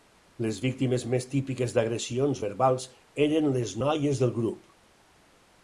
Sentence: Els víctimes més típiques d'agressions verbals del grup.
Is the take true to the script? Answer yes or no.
no